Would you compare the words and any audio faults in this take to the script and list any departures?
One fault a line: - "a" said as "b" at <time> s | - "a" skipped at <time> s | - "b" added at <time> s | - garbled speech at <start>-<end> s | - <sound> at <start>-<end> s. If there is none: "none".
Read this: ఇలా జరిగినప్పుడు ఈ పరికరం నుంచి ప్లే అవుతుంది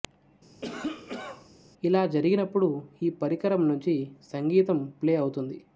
- cough at 0.6-1.5 s
- "సంగీతం" added at 4.3 s